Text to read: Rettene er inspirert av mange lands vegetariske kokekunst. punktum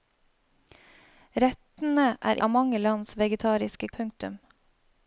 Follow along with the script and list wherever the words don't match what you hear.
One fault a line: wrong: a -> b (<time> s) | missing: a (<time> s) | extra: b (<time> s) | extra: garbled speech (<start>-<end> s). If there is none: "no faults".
missing: inspirert (2.4 s)
missing: kokekunst (3.9 s)